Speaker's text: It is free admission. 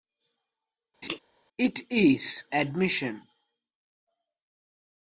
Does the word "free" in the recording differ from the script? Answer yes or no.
yes